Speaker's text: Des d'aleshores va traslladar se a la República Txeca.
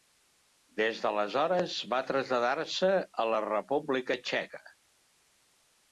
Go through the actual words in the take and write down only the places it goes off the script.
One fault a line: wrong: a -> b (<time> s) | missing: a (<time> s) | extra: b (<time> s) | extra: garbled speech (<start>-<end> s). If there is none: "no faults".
no faults